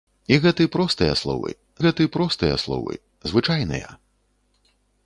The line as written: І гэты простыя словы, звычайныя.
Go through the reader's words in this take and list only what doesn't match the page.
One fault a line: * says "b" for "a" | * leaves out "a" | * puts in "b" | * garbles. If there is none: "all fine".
* puts in "гэты простыя словы"